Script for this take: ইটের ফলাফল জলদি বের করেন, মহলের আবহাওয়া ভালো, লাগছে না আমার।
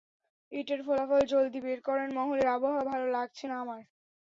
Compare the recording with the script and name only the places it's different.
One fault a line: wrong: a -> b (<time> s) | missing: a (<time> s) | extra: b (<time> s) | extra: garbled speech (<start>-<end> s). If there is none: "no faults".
no faults